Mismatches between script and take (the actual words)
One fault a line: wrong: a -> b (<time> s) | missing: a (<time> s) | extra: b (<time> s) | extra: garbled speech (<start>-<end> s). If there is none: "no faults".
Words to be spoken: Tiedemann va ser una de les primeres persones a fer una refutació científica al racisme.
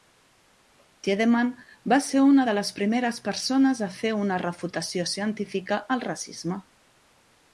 no faults